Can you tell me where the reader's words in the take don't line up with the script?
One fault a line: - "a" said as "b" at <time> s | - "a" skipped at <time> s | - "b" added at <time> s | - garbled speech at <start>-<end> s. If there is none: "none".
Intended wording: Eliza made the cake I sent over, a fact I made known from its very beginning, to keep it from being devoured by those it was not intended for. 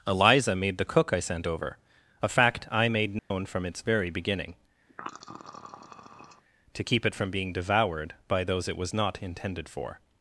- "cake" said as "cook" at 0.8 s